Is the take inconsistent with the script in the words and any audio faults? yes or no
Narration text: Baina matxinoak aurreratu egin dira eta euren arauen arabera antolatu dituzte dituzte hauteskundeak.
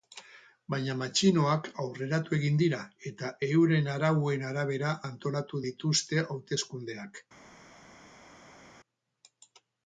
yes